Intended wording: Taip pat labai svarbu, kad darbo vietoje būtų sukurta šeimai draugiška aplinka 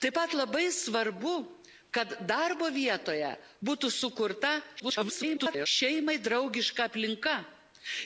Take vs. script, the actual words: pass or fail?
fail